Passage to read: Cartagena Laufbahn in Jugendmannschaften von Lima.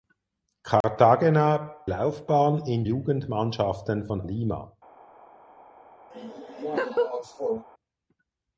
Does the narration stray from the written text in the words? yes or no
no